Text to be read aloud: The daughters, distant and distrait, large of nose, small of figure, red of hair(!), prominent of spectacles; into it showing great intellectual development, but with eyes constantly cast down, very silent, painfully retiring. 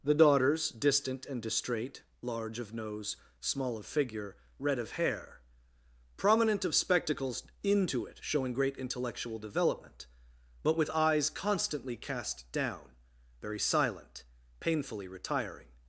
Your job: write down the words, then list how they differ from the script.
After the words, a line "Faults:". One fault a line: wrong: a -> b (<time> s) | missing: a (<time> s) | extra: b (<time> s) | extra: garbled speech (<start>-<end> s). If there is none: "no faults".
The daughters, distant and distrait, large of nose, small of figure, red of hair(!), prominent of spectacles; into it showing great intellectual development, but with eyes constantly cast down, very silent, painfully retiring.
Faults:
no faults